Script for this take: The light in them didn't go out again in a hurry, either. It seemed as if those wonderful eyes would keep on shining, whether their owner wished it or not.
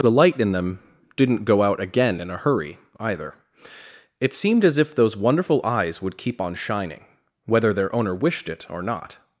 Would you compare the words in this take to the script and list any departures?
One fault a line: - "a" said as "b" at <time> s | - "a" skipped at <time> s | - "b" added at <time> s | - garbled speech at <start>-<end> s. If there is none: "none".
none